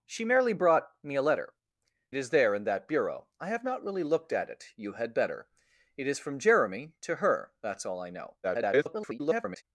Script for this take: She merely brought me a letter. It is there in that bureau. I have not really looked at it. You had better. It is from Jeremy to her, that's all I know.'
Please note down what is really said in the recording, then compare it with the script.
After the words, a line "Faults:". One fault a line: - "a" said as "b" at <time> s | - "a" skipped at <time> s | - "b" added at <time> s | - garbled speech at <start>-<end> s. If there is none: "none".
She merely brought me a letter. Is there in that bureau. I have not really looked at it. You had better. It is from Jeremy to her, that's all I know.' [garbled]
Faults:
- "It" skipped at 1.5 s
- garbled speech at 8.4-9.6 s